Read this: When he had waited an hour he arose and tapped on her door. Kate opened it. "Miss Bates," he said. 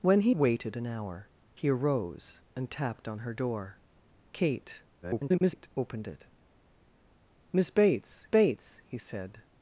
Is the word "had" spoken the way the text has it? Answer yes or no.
no